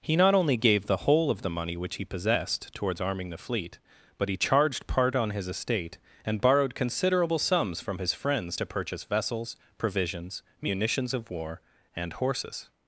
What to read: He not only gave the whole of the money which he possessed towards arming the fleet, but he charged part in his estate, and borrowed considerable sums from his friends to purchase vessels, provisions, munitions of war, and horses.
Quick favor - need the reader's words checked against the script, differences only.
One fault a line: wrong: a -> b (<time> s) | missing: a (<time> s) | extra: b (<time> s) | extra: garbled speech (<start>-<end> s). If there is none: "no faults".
wrong: in -> on (5.2 s)